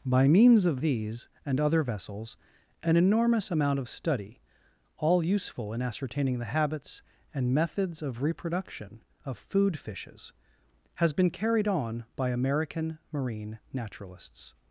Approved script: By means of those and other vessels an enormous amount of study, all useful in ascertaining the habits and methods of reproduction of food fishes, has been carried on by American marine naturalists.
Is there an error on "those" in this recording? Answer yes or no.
yes